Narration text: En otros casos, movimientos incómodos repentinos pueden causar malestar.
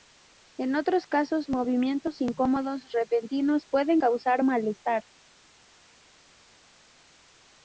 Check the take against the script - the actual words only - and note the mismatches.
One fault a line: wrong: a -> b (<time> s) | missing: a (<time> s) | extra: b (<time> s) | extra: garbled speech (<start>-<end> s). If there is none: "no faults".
no faults